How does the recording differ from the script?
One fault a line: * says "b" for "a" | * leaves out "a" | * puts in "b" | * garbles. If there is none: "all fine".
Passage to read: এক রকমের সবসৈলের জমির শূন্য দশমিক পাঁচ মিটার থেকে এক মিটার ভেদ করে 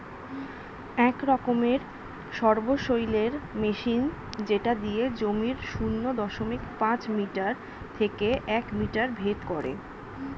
* puts in "মেশিন যেটা দিয়ে"